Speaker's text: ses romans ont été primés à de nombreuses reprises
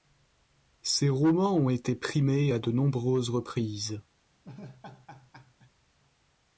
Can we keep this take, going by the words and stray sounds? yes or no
no